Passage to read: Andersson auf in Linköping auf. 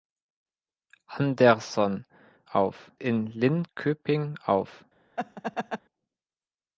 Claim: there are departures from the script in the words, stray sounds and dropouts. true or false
true